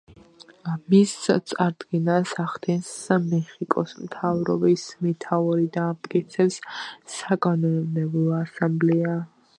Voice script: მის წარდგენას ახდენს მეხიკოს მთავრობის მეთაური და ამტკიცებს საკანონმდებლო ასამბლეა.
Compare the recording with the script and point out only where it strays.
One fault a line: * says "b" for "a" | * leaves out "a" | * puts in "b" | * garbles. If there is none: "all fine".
all fine